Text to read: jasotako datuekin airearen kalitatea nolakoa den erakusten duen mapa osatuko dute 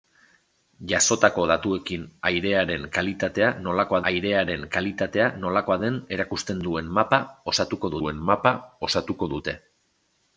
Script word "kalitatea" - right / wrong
right